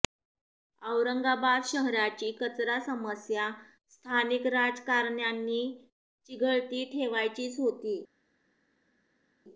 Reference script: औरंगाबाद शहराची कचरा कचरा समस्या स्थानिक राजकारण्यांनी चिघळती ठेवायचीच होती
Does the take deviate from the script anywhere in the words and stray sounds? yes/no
yes